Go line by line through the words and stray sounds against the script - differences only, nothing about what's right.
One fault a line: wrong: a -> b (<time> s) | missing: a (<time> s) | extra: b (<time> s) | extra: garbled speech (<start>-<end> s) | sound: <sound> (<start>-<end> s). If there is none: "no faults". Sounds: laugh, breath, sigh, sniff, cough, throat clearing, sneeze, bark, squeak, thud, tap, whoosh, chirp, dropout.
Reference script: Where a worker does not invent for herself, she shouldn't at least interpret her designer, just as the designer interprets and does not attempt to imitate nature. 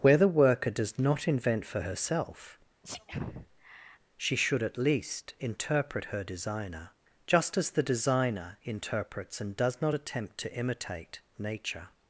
wrong: a -> the (0.2 s)
sound: sneeze (2.8-4.0 s)
wrong: shouldn't -> should (4.4 s)